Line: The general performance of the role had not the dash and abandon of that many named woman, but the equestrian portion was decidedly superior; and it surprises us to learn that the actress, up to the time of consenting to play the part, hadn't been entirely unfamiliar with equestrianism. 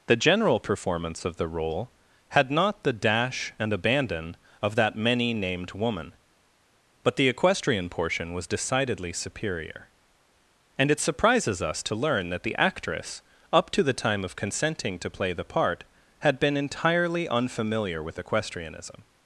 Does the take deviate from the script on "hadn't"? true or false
true